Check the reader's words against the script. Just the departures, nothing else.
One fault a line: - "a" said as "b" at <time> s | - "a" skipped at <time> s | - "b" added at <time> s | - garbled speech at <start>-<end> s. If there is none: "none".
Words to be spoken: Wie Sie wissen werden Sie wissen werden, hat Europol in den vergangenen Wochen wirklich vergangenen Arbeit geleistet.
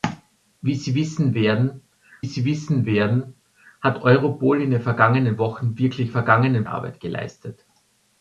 none